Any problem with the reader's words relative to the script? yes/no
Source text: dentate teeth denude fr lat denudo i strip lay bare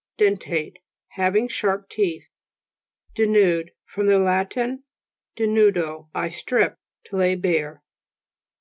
yes